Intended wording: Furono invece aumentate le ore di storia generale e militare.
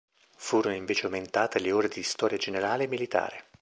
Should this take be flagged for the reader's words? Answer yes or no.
no